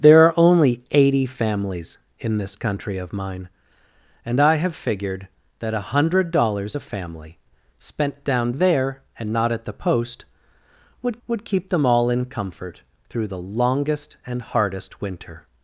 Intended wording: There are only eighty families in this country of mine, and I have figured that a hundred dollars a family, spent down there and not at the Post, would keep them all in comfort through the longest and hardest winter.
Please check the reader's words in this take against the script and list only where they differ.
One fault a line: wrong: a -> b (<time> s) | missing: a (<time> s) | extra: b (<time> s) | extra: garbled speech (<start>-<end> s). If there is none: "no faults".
extra: would (11.3 s)